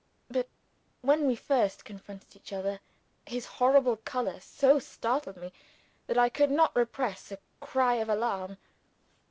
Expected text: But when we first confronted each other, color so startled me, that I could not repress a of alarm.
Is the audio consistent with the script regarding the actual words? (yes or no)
no